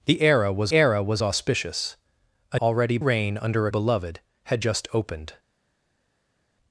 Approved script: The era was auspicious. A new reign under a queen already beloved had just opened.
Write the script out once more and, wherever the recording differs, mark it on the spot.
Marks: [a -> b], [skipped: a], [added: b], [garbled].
The era was [added: era was] auspicious. A [new -> already] reign under [skipped: a queen already] beloved had just opened.